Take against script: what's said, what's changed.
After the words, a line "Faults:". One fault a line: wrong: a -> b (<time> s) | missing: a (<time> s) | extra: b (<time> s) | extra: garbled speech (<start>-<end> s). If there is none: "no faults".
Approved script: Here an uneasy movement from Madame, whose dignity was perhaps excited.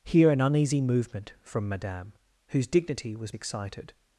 Here an uneasy movement from Madame, whose dignity was excited.
Faults:
missing: perhaps (3.3 s)